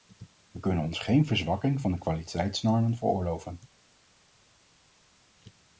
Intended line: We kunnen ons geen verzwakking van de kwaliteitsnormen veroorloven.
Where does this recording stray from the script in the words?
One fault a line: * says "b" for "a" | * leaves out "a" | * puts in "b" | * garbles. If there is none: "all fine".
all fine